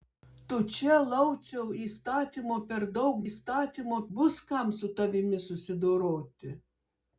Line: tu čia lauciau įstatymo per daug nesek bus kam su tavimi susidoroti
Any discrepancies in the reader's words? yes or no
yes